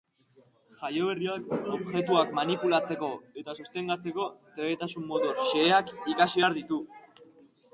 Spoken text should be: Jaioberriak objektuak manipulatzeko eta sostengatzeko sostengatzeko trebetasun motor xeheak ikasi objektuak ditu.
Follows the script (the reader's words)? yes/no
no